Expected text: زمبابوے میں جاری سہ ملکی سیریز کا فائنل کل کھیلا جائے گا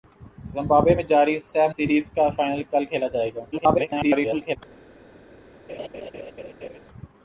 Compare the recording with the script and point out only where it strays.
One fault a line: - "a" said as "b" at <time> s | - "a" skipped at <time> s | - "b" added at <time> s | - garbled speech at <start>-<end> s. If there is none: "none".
- "ملکی" skipped at 1.7 s
- garbled speech at 3.5-4.6 s